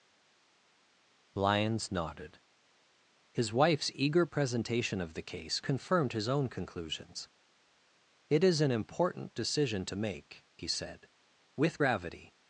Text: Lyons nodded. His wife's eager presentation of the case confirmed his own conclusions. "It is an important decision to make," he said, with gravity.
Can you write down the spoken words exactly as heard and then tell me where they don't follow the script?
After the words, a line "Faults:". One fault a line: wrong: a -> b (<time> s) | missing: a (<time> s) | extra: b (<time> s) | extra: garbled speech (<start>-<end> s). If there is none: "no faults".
Lyons nodded. His wife's eager presentation of the case confirmed his own conclusions. "It is an important decision to make," he said, with gravity.
Faults:
no faults